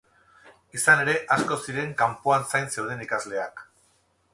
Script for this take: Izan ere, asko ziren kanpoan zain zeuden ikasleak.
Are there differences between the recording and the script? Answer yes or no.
no